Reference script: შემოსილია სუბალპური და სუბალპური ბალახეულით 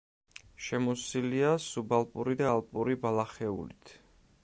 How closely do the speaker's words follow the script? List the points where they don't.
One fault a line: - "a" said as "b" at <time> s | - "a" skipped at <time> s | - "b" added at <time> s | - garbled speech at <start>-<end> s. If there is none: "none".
- "სუბალპური" said as "ალპური" at 2.5 s